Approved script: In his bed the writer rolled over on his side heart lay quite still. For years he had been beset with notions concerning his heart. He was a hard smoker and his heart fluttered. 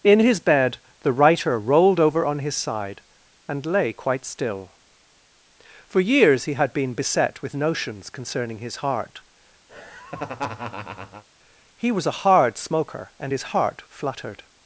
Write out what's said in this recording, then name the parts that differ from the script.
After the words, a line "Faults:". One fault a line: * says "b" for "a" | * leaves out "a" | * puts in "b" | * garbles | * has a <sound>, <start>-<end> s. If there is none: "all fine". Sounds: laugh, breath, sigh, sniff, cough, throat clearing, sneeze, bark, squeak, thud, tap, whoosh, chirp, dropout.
In his bed the writer rolled over on his side and lay quite still. For years he had been beset with notions concerning his heart. He was a hard smoker and his heart fluttered.
Faults:
* says "and" for "heart"
* has a laugh, 9.7-11.2 s